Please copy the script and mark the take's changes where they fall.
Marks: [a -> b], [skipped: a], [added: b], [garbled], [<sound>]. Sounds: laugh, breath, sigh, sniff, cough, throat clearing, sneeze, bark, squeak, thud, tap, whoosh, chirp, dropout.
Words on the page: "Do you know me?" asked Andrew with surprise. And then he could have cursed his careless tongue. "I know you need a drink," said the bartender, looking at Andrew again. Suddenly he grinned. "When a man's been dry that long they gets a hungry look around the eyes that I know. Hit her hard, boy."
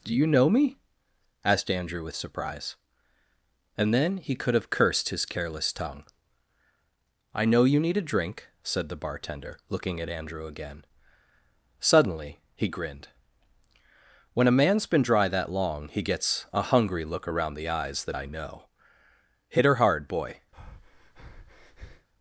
"Do you know me?" asked Andrew with surprise. And then he could have cursed his careless tongue. "I know you need a drink," said the bartender, looking at Andrew again. Suddenly he grinned. "When a man's been dry that long [they -> he] gets a hungry look around the eyes that I know. Hit her hard, boy." [breath]